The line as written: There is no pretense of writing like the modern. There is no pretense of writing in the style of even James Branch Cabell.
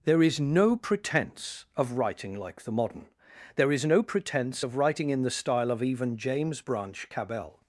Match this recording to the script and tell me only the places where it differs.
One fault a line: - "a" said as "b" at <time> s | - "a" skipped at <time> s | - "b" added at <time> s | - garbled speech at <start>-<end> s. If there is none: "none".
none